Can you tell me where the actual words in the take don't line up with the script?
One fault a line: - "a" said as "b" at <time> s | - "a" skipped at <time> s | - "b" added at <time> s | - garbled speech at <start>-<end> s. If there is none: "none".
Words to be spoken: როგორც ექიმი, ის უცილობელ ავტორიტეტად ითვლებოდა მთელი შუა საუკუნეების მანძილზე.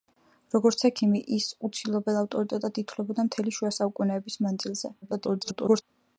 - garbled speech at 5.0-5.8 s